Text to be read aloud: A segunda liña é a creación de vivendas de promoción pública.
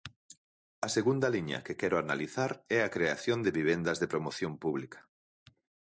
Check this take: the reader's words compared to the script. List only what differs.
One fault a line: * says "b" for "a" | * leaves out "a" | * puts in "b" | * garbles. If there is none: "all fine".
* puts in "que quero analizar"